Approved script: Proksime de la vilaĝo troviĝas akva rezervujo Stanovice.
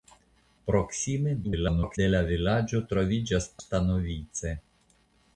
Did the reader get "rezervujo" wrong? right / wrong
wrong